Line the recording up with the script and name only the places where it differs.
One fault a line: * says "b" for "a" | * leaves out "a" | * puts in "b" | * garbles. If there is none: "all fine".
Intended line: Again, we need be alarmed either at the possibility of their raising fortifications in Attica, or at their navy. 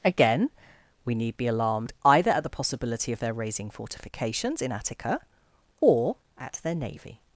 all fine